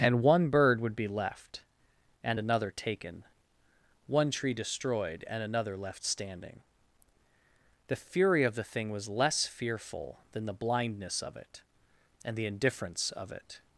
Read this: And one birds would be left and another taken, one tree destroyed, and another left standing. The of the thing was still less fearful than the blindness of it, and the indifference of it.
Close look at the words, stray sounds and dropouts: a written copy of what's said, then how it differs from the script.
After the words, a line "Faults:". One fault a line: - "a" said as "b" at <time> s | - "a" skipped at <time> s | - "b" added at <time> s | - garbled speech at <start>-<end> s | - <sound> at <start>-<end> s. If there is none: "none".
And one bird would be left and another taken, one tree destroyed, and another left standing. The fury of the thing was less fearful than the blindness of it, and the indifference of it.
Faults:
- "birds" said as "bird" at 0.5 s
- "fury" added at 8.0 s
- "still" skipped at 9.1 s